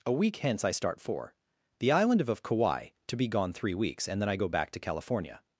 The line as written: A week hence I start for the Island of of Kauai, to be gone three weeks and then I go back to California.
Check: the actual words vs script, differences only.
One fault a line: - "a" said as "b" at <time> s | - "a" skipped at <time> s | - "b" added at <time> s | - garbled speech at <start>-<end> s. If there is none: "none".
none